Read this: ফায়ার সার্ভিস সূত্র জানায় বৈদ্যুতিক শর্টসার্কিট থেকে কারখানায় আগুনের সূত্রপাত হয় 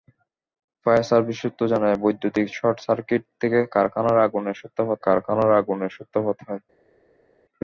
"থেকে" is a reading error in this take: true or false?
false